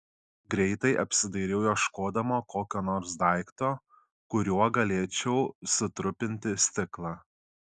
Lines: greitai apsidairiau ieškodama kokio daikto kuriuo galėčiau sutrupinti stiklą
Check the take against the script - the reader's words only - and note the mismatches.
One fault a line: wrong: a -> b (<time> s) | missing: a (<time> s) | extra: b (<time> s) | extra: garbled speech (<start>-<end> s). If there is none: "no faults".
extra: nors (2.9 s)